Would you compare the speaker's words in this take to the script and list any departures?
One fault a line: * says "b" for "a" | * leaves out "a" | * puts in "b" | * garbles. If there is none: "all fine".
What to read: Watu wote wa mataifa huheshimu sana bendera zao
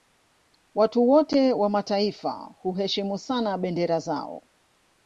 all fine